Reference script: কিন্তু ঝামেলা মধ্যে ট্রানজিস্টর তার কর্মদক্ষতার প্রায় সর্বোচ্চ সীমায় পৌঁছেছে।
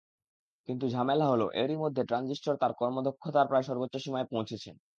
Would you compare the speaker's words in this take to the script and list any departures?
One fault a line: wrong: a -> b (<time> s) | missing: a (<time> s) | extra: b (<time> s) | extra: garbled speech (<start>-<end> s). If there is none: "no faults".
extra: হলো এরই (1.3 s)